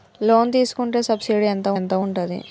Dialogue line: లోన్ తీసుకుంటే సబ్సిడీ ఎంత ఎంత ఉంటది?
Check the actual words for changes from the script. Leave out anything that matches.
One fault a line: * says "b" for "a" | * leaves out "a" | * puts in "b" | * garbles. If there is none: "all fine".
all fine